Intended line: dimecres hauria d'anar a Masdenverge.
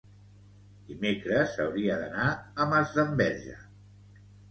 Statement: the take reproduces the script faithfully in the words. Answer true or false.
true